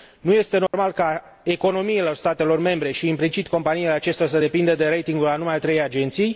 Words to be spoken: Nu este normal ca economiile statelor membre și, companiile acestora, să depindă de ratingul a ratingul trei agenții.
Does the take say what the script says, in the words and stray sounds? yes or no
no